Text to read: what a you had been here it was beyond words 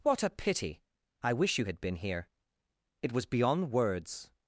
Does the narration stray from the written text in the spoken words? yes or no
yes